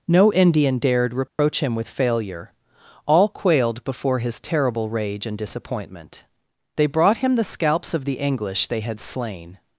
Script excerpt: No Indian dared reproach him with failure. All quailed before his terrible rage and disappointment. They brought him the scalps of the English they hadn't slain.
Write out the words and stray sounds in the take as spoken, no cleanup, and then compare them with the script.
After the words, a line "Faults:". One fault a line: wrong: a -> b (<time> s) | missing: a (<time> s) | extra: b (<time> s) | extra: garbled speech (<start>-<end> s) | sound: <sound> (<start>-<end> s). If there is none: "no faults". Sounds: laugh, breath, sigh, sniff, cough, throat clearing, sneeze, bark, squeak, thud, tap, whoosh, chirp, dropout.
No Indian dared reproach him with failure. All quailed before his terrible rage and disappointment. They brought him the scalps of the English they had slain.
Faults:
sound: dropout (1.3-1.4 s)
wrong: hadn't -> had (8.8 s)